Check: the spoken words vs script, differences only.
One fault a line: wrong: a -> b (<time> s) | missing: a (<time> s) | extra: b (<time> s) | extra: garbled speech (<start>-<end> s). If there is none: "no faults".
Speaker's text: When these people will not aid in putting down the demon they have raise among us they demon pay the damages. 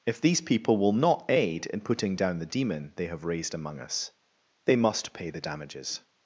wrong: When -> If (0.1 s)
wrong: raise -> raised (3.2 s)
wrong: demon -> must (4.8 s)